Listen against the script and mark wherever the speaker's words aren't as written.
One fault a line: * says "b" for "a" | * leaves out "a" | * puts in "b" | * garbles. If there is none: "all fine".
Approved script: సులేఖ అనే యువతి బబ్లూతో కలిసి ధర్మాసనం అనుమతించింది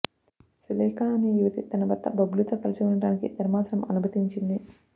* puts in "తన భర్త"
* puts in "ఉండటానికి"